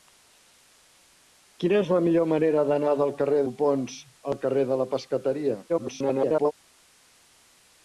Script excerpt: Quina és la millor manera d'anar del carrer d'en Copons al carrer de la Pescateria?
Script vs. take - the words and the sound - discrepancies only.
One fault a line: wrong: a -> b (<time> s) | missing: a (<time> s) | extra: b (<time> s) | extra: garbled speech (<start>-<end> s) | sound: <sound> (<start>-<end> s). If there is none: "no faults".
missing: d'en (3.5 s)
extra: garbled speech (5.7-6.5 s)